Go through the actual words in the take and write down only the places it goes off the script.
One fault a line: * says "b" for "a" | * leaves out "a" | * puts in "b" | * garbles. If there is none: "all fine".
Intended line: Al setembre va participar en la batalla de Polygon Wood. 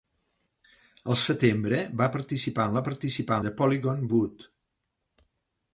* says "participar" for "batalla"